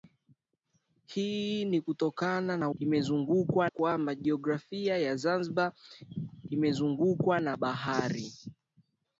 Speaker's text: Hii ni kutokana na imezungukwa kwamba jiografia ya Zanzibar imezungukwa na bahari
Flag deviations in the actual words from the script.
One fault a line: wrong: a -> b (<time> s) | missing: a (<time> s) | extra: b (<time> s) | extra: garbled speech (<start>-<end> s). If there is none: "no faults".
no faults